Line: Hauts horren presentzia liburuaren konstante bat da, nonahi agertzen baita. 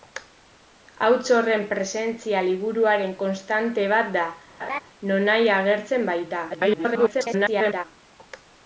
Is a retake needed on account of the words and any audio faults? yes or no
yes